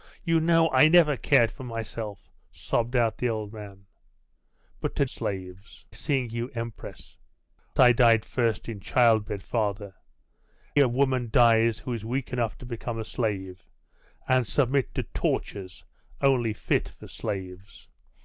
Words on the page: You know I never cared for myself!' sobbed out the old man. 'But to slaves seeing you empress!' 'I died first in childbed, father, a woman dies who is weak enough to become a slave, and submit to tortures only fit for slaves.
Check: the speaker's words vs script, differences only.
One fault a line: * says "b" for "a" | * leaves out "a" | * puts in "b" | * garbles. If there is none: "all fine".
all fine